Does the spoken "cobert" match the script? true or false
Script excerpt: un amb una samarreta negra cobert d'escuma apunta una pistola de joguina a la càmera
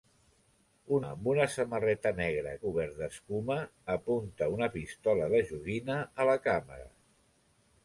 true